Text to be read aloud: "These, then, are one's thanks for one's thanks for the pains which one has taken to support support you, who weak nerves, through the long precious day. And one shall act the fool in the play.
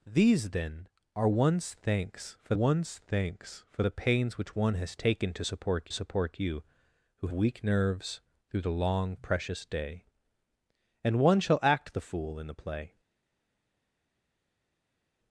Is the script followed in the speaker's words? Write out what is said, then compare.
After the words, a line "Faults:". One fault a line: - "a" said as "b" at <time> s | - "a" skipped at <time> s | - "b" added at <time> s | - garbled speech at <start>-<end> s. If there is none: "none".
"These, then, are one's thanks for one's thanks for the pains which one has taken to support support you, who weak nerves, through the long precious day. And one shall act the fool in the play.
Faults:
none